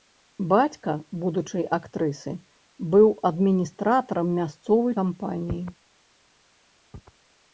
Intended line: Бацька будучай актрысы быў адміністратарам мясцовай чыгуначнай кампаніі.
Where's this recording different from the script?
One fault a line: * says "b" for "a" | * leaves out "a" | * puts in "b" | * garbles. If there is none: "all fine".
* leaves out "чыгуначнай"